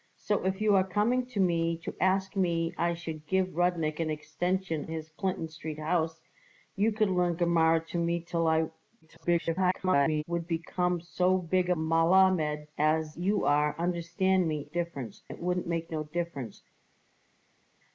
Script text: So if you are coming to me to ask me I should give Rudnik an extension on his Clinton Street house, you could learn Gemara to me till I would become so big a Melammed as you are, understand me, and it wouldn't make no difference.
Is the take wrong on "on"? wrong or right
wrong